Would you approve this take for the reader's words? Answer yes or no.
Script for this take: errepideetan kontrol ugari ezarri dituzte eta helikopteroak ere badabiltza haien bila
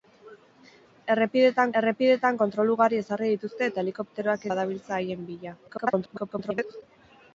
no